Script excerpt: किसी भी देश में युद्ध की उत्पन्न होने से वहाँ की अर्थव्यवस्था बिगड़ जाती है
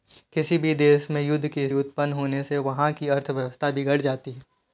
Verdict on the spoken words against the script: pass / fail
pass